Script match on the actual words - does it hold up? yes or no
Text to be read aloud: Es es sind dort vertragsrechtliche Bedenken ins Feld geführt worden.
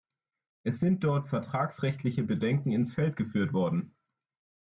no